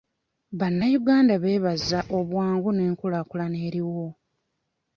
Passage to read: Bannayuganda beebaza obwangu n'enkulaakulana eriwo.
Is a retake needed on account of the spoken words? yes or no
no